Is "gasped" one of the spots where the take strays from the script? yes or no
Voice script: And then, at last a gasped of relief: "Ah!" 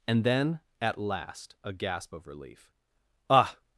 yes